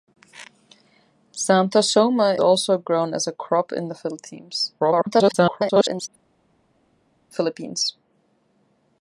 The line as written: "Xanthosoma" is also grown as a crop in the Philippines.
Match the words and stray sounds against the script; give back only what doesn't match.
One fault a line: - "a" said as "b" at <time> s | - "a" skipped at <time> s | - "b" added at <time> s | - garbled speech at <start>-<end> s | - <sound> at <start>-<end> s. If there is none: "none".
- "is" skipped at 2.4 s
- garbled speech at 4.8-6.1 s